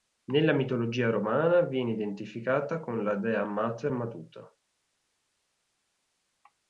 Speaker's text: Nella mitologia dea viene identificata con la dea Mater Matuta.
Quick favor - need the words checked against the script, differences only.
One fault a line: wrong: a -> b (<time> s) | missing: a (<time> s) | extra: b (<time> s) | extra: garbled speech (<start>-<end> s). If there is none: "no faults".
wrong: dea -> romana (1.1 s)